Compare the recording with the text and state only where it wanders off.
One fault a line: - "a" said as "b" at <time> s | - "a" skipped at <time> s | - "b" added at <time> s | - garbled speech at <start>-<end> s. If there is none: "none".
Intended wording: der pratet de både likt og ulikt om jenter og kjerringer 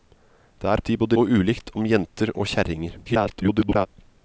- "pratet" skipped at 0.8 s
- "likt" skipped at 1.2 s
- garbled speech at 3.0-3.9 s